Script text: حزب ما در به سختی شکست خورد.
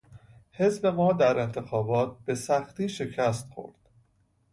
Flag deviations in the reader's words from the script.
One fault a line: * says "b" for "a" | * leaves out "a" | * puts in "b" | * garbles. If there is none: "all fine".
* puts in "انتخابات"